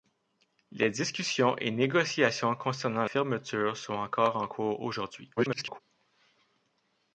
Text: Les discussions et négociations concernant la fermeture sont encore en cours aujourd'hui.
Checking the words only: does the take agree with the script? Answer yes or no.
no